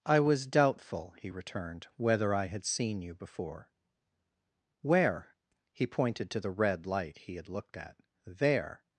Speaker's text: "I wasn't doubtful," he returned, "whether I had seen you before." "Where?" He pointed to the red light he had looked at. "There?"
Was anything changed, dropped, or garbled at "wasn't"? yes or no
yes